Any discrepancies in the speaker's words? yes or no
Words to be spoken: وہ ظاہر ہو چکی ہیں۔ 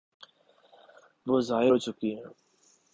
no